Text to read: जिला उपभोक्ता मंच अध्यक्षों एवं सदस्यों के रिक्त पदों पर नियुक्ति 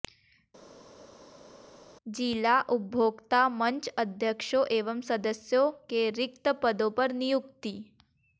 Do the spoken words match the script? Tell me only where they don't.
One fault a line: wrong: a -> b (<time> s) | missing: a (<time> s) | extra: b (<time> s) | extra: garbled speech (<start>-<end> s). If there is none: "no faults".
no faults